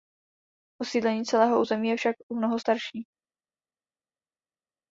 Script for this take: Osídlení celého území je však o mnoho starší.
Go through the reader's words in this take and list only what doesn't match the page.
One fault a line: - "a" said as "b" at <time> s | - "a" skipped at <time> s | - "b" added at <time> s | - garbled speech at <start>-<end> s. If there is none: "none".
none